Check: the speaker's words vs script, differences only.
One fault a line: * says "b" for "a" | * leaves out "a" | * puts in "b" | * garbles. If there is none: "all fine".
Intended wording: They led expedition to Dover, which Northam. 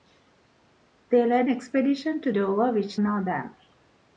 all fine